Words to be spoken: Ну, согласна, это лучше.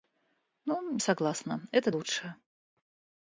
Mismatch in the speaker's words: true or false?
false